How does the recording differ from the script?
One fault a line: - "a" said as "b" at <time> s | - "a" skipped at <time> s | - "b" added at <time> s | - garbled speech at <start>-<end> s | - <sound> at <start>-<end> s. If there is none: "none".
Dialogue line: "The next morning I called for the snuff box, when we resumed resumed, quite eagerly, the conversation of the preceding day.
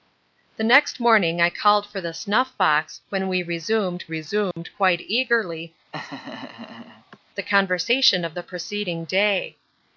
- dropout at 4.5-4.6 s
- laugh at 5.9-7.2 s